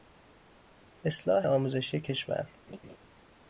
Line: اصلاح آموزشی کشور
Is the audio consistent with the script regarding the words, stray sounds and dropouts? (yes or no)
no